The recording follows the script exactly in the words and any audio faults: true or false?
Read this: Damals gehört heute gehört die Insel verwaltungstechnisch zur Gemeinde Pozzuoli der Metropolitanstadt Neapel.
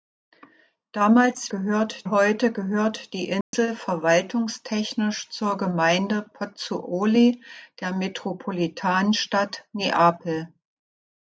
false